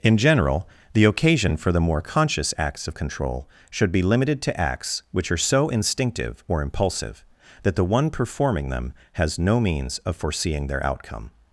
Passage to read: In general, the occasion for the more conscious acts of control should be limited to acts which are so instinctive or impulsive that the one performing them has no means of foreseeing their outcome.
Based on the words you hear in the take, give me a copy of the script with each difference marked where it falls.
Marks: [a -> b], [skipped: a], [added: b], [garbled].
In general, the occasion for the more conscious acts of control should be limited to acts which are so instinctive or impulsive that the one performing them has no means of foreseeing their outcome.